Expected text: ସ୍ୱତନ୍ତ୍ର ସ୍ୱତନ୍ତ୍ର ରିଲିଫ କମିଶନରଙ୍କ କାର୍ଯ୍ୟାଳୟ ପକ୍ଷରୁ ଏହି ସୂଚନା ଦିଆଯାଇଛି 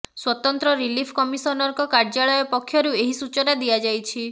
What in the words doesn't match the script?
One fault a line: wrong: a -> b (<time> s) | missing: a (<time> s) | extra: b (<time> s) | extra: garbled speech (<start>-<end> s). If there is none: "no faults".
missing: ସ୍ୱତନ୍ତ୍ର (0.7 s)